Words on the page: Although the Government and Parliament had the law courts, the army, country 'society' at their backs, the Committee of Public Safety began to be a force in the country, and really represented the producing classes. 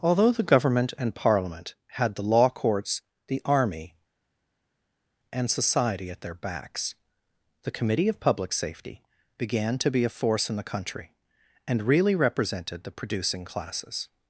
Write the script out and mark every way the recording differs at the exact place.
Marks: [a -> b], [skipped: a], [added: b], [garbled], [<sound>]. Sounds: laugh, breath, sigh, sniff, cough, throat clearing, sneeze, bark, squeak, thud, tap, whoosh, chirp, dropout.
Although the Government and Parliament had the law courts, the army, [country -> and] 'society' at their backs, the Committee of Public Safety began to be a force in the country, and really represented the producing classes.